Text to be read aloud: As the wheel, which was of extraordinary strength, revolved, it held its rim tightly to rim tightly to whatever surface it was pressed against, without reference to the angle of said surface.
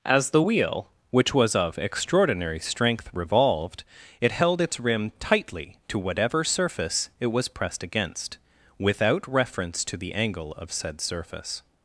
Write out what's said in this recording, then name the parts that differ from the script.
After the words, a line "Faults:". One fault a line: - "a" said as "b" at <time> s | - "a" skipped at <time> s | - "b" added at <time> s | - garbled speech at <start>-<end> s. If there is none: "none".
As the wheel, which was of extraordinary strength, revolved, it held its rim tightly to whatever surface it was pressed against, without reference to the angle of said surface.
Faults:
- "rim tightly to" skipped at 6.0 s